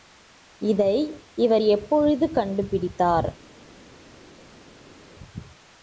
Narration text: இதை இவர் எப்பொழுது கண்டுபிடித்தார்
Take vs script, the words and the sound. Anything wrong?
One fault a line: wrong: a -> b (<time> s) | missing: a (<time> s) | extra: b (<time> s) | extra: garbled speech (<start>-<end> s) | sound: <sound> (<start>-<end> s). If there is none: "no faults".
no faults